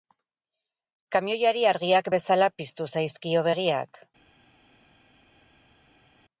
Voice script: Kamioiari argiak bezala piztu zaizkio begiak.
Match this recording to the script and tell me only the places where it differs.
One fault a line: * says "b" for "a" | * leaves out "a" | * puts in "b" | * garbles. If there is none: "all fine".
all fine